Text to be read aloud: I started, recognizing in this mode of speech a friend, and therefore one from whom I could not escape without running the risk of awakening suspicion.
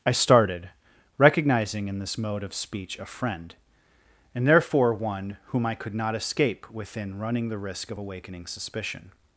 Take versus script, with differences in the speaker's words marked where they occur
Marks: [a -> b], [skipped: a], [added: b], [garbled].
I started, recognizing in this mode of speech a friend, and therefore one [skipped: from] whom I could not escape [without -> within] running the risk of awakening suspicion.